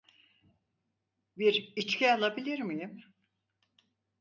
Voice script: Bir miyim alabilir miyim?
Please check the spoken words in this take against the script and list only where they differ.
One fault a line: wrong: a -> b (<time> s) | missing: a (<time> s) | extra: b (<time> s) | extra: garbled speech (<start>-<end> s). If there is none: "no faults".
wrong: miyim -> içki (1.7 s)